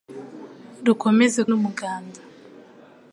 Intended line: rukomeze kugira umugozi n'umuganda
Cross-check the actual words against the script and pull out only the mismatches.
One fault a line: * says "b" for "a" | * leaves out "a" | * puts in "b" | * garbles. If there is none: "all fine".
* leaves out "kugira umugozi"